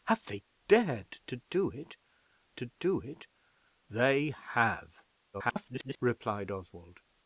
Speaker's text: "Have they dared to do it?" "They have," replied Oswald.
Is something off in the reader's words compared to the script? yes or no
yes